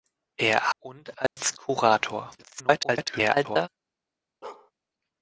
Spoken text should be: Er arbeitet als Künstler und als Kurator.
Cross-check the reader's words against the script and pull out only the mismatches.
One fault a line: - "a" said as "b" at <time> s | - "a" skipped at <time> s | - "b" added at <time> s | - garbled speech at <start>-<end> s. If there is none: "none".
- "arbeitet als Künstler" skipped at 0.7 s
- garbled speech at 2.4-3.7 s